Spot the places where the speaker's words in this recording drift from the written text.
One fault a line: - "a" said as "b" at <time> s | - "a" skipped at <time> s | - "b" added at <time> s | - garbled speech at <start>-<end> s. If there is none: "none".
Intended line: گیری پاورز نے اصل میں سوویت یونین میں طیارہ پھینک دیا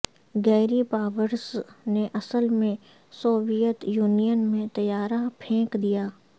none